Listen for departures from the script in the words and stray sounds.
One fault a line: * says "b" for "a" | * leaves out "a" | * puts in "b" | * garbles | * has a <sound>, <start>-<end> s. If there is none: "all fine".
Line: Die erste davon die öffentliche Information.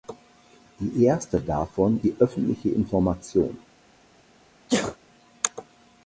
* has a sneeze, 4.7-5.0 s